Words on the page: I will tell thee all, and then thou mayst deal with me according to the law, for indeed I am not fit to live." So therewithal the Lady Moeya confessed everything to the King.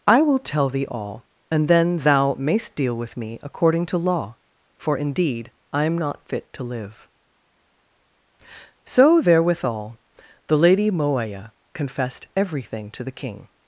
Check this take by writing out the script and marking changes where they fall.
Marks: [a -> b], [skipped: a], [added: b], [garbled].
I will tell thee all, and then thou mayst deal with me according to [skipped: the] law, for indeed I am not fit to live." So therewithal the Lady Moeya confessed everything to the King.